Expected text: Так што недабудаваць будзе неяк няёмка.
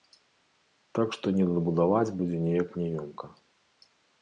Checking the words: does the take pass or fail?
pass